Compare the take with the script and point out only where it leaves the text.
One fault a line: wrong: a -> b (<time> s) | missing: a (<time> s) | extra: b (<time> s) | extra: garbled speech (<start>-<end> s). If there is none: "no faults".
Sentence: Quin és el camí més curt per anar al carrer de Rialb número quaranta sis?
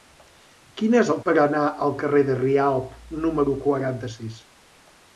missing: camí més curt (1.2 s)